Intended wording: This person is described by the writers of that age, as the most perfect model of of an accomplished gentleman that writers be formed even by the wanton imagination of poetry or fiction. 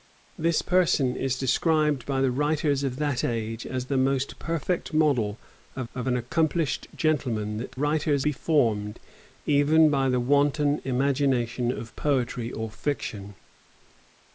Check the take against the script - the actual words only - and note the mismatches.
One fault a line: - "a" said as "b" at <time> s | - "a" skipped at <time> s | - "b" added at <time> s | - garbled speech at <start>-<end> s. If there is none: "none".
none